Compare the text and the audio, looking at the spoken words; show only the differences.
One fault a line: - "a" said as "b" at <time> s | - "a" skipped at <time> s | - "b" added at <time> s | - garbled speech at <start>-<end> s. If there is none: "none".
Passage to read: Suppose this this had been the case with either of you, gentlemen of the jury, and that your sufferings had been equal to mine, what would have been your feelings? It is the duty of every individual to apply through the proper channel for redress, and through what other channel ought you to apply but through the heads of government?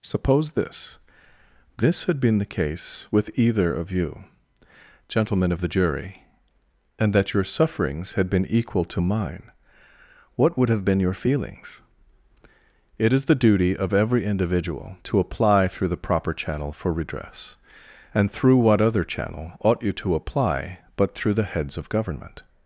none